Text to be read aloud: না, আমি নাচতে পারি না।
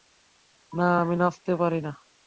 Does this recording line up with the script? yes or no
yes